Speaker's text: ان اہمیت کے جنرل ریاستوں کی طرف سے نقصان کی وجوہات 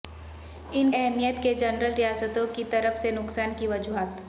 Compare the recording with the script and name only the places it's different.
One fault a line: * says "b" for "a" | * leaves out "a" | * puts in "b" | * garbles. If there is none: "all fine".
all fine